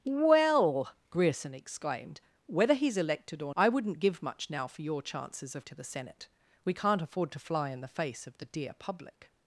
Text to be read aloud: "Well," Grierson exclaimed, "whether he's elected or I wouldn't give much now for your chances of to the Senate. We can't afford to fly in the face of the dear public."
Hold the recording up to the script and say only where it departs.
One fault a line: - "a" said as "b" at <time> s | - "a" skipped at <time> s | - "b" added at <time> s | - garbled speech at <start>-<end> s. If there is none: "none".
none